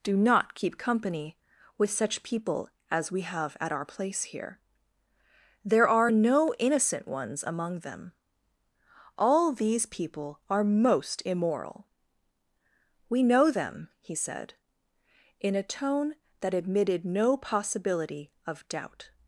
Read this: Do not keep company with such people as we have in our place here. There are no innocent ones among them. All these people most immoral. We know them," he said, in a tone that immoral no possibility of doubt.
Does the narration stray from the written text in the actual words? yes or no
yes